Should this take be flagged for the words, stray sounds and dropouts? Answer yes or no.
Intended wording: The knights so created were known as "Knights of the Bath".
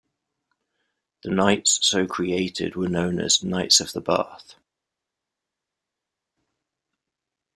no